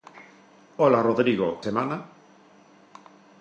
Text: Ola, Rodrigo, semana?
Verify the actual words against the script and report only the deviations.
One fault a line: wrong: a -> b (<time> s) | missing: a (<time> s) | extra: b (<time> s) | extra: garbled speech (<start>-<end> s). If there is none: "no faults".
no faults